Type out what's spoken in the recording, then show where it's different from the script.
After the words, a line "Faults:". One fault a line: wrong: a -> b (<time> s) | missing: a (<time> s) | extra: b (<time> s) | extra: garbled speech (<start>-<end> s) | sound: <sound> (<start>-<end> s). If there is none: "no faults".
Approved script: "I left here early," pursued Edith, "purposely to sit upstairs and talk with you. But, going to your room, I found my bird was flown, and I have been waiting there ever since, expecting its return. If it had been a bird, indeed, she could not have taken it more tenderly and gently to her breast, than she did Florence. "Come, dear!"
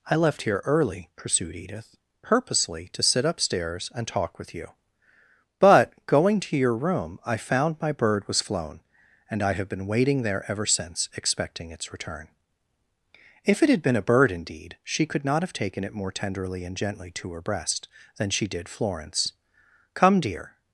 "I left here early," pursued Edith, "purposely to sit upstairs and talk with you. But, going to your room, I found my bird was flown, and I have been waiting there ever since, expecting its return. If it had been a bird, indeed, she could not have taken it more tenderly and gently to her breast, than she did Florence. "Come, dear!"
Faults:
no faults